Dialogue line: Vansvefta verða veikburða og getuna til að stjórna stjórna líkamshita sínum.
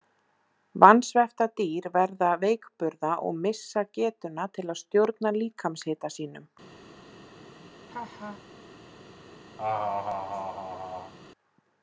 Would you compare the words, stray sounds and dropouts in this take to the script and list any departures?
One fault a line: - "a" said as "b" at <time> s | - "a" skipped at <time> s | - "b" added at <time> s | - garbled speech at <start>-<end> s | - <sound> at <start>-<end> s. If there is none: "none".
- "dýr" added at 1.6 s
- "missa" added at 3.5 s
- "stjórna" skipped at 5.4 s
- laugh at 7.9-8.4 s
- laugh at 9.6-11.1 s